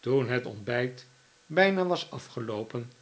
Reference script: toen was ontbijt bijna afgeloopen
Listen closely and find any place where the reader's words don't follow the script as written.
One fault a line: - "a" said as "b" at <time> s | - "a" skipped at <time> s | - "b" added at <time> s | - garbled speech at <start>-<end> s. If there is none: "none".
- "was" said as "het" at 0.3 s
- "was" added at 1.9 s